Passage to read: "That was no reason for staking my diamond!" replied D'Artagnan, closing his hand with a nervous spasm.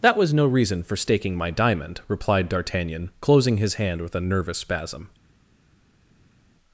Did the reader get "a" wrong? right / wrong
right